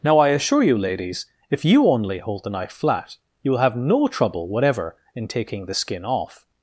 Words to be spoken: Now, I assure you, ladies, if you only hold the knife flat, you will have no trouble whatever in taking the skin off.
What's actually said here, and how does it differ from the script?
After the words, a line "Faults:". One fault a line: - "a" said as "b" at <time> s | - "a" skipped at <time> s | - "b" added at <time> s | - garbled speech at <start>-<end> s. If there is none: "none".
Now, I assure you, ladies, if you only hold the knife flat, you will have no trouble whatever in taking the skin off.
Faults:
none